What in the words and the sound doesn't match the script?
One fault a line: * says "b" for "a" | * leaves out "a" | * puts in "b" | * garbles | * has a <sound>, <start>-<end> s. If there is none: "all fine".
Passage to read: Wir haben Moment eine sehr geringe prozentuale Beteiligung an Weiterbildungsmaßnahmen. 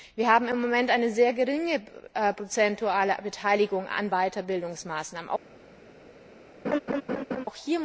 * puts in "im"
* has a laugh, 6.6-7.5 s